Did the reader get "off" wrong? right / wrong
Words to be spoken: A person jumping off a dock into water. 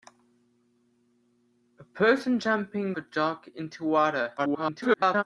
wrong